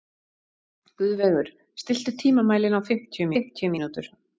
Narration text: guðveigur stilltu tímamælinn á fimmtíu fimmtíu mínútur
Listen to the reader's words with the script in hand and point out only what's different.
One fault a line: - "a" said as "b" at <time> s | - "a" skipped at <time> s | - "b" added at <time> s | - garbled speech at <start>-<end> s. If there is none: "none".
none